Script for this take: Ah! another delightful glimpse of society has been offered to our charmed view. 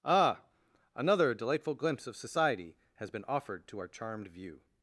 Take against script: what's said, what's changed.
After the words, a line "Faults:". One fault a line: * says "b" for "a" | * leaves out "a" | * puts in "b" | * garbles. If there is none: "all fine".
Ah! another delightful glimpse of society has been offered to our charmed view.
Faults:
all fine